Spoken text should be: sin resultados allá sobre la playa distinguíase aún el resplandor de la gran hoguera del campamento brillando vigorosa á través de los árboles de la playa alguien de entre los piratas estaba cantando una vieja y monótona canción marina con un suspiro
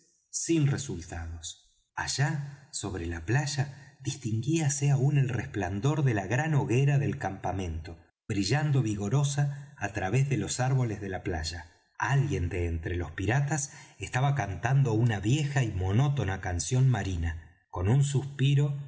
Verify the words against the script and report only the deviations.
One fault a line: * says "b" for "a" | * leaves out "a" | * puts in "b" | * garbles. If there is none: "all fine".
all fine